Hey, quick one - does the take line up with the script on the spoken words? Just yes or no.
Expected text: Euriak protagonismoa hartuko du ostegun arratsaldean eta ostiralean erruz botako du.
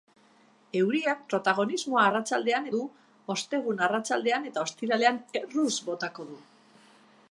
no